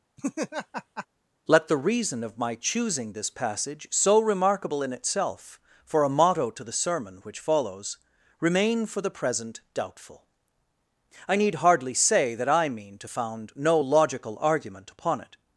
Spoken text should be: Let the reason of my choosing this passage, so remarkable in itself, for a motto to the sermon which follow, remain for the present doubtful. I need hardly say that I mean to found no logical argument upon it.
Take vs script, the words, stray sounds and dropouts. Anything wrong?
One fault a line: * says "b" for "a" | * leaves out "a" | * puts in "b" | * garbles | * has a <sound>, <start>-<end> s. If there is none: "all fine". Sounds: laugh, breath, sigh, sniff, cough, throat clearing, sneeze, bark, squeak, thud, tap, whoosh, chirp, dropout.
* has a laugh, 0.2-1.1 s
* says "follows" for "follow"